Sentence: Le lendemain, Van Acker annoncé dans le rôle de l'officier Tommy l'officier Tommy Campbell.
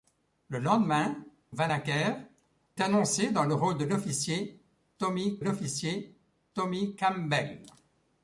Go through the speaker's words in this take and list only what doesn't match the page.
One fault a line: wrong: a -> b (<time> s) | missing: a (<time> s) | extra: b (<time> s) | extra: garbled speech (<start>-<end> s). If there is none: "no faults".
no faults